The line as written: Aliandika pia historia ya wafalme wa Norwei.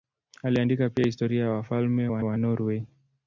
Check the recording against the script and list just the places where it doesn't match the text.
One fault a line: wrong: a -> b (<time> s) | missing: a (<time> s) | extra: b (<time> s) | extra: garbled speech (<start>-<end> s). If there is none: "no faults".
extra: wa (2.2 s)